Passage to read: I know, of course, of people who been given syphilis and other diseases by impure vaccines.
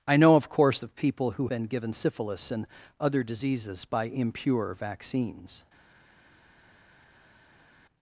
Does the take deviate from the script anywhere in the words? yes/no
no